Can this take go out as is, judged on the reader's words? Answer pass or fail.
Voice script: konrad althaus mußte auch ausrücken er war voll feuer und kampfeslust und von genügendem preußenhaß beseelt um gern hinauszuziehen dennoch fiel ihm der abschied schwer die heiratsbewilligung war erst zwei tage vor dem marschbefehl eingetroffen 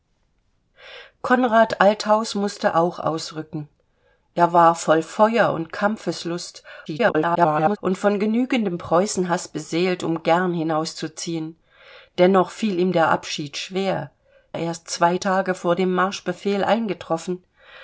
fail